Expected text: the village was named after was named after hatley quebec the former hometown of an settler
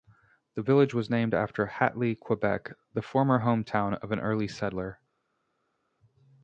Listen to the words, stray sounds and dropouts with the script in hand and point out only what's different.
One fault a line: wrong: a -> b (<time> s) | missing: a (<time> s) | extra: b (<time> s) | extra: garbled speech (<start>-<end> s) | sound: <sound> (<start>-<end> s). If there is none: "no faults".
missing: was named after (1.7 s)
extra: early (4.2 s)